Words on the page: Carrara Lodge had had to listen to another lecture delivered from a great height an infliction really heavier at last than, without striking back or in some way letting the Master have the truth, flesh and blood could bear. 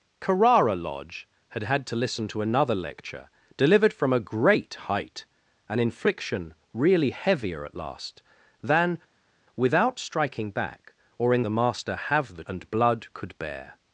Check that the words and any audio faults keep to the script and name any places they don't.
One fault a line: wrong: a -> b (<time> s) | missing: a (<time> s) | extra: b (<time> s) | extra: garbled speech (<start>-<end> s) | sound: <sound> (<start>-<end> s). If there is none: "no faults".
missing: some way letting (11.5 s)
missing: truth flesh (12.4 s)